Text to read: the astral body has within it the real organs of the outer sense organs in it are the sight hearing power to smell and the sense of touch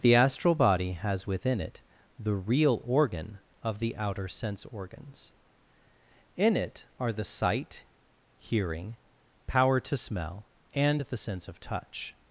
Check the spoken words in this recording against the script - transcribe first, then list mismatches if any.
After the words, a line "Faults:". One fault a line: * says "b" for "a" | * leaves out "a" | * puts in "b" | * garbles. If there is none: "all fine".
the astral body has within it the real organ of the outer sense organs in it are the sight hearing power to smell and the sense of touch
Faults:
* says "organ" for "organs"